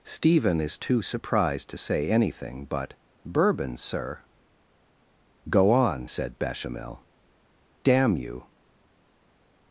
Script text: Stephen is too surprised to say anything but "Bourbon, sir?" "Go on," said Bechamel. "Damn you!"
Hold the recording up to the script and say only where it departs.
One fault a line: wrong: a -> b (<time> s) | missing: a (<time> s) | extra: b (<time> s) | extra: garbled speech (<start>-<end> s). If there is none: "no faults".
no faults